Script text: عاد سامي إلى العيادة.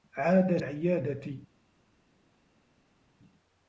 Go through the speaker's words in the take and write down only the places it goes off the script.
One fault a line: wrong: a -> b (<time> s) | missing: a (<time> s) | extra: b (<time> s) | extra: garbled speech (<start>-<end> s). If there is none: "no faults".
missing: سامي إلى (0.6 s)